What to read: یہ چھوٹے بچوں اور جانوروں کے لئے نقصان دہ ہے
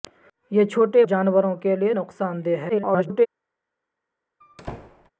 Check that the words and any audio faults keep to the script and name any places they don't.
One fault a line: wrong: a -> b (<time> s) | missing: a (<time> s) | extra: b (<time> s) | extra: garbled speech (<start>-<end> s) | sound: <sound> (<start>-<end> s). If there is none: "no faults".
missing: بچوں اور (1.1 s)
extra: garbled speech (2.7-3.3 s)
sound: squeak (4.4-5.1 s)